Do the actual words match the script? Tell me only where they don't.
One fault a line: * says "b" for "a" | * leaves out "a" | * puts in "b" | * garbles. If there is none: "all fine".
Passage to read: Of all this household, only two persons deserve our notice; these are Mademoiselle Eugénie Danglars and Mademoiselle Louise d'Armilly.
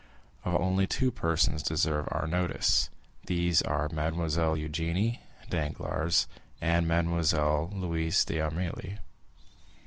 * leaves out "all this household"